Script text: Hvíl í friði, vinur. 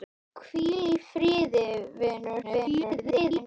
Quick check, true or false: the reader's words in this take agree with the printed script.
false